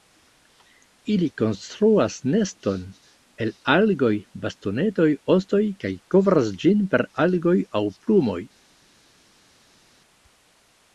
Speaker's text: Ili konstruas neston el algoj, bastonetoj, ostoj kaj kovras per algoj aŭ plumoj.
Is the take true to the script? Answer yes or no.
no